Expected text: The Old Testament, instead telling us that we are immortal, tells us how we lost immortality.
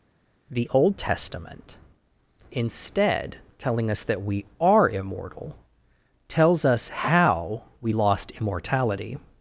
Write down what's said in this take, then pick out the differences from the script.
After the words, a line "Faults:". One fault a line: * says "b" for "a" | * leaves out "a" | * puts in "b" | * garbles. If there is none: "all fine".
The Old Testament, instead telling us that we are immortal, tells us how we lost immortality.
Faults:
all fine